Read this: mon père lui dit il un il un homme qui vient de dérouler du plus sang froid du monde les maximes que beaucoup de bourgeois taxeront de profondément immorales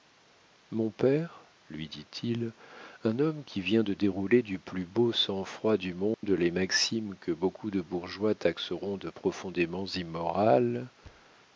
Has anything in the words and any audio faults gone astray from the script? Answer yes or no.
yes